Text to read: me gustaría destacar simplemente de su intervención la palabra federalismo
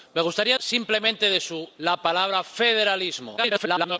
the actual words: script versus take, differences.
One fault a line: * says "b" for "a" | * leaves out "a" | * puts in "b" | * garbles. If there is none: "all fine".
* leaves out "destacar"
* leaves out "intervención"
* garbles